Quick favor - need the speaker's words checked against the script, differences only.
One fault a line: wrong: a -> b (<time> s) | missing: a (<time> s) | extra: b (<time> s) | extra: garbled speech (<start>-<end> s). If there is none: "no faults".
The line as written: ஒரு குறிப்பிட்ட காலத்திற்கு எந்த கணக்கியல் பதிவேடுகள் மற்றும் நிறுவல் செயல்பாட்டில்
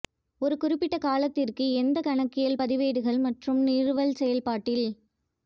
no faults